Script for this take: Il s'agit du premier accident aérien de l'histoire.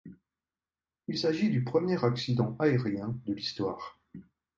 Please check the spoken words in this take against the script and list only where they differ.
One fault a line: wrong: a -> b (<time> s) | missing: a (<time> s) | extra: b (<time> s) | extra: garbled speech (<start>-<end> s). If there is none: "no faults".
no faults